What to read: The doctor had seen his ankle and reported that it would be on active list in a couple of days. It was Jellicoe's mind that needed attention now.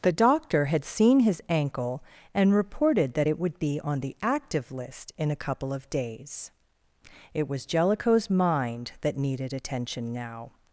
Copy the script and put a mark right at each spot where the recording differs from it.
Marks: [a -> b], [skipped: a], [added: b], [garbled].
The doctor had seen his ankle and reported that it would be on [added: the] active list in a couple of days. It was Jellicoe's mind that needed attention now.